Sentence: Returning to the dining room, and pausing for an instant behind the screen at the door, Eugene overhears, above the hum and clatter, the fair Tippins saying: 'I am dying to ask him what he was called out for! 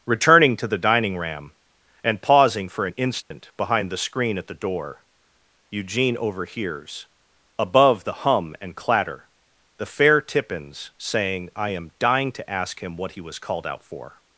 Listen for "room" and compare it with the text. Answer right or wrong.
wrong